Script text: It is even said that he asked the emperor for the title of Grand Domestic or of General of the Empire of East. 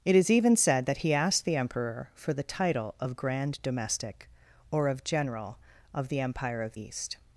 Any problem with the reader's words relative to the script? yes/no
no